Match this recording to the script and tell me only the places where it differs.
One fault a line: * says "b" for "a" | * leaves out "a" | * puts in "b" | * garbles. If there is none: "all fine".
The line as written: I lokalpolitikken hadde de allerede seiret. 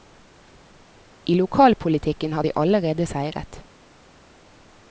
* says "har" for "hadde"